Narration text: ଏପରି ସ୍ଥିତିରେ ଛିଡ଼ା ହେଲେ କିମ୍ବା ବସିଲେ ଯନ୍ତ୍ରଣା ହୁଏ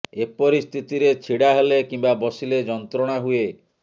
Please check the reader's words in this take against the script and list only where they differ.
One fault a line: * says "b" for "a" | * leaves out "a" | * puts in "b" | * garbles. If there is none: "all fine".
all fine